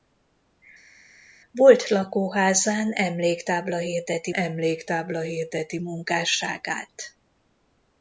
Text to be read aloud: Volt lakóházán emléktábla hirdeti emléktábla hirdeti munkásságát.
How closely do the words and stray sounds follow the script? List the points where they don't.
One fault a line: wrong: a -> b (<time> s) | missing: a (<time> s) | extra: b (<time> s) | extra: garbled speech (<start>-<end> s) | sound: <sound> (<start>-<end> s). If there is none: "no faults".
no faults